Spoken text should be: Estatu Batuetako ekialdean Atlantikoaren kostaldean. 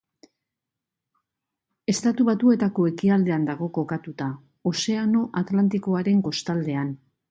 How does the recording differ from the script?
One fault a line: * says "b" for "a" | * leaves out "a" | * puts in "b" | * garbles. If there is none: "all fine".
* puts in "dago kokatuta Ozeano"